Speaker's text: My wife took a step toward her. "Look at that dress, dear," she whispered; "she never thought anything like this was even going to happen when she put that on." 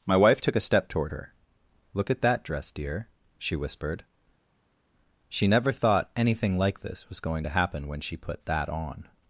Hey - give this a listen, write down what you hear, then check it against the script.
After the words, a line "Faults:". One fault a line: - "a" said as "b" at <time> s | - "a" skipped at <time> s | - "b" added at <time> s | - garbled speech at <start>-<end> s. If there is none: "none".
My wife took a step toward her. "Look at that dress, dear," she whispered; "she never thought anything like this was going to happen when she put that on."
Faults:
- "even" skipped at 7.2 s